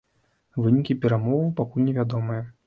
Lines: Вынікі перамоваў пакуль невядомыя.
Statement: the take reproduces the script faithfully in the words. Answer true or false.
true